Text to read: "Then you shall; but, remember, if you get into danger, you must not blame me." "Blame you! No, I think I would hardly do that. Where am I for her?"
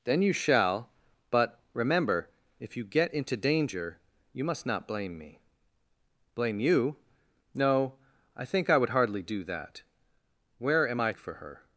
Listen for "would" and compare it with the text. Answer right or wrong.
right